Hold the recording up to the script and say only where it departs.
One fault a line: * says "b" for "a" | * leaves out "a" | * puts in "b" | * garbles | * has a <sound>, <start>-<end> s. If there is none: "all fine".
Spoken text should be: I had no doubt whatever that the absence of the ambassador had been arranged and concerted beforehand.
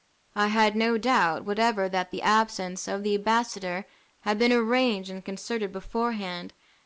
all fine